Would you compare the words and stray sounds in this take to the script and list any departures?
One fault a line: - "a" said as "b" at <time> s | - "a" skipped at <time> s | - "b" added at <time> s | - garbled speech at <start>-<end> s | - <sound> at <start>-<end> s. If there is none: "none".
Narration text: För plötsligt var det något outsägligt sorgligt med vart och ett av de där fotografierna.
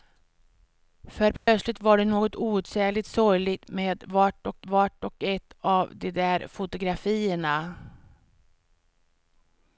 - dropout at 1.4-1.5 s
- "vart och" added at 4.6 s